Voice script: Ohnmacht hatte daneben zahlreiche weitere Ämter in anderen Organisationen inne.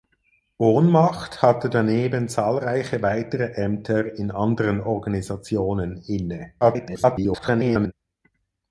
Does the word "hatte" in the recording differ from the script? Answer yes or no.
no